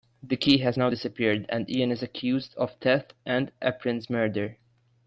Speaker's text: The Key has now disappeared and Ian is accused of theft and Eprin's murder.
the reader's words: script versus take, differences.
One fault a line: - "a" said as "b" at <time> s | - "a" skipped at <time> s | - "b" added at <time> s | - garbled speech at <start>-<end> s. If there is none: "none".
none